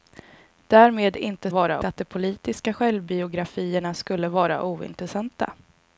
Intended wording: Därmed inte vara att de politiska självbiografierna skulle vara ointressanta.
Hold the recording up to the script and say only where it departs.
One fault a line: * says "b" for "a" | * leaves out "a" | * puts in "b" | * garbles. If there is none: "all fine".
all fine